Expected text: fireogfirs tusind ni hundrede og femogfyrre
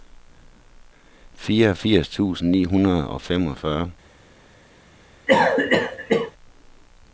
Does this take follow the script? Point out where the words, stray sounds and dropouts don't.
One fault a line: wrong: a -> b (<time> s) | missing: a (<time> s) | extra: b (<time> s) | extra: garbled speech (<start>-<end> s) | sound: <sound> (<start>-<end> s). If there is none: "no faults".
sound: cough (5.3-6.3 s)